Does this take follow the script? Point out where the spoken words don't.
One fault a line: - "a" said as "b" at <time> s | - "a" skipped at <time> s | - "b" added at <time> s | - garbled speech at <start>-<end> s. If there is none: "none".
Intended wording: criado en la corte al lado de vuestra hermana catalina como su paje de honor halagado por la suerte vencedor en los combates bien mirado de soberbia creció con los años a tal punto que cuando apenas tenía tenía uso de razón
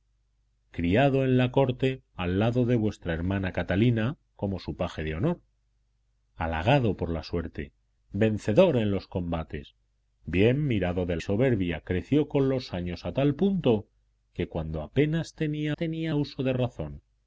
none